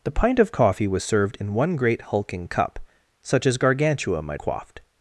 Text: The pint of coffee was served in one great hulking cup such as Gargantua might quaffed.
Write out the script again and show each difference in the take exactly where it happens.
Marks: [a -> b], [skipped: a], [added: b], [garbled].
The pint of coffee was served in one great hulking cup such as Gargantua might quaffed.